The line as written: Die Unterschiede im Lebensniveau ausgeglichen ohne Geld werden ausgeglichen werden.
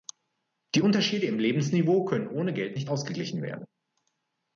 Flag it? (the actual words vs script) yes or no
yes